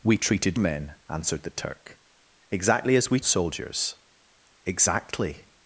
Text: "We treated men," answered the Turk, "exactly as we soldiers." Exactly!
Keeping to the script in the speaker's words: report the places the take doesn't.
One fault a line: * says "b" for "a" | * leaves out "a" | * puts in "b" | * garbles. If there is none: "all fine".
all fine